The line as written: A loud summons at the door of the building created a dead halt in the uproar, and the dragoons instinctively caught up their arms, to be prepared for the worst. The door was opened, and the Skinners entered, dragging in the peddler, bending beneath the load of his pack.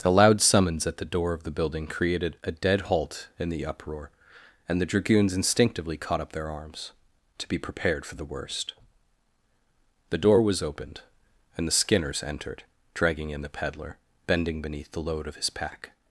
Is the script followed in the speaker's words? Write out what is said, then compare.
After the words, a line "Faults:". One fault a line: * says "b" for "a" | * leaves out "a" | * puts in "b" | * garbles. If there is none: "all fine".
The loud summons at the door of the building created a dead halt in the uproar, and the dragoons instinctively caught up their arms, to be prepared for the worst. The door was opened, and the Skinners entered, dragging in the peddler, bending beneath the load of his pack.
Faults:
* says "The" for "A"